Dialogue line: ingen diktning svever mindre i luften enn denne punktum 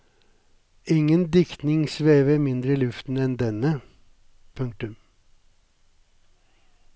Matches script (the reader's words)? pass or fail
pass